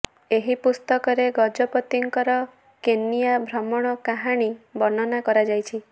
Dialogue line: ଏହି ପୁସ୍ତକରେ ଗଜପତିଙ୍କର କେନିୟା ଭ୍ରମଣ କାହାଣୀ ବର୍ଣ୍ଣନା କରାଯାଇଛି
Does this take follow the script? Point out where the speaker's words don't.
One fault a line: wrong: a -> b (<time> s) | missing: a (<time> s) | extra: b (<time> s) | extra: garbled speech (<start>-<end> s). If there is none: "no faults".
no faults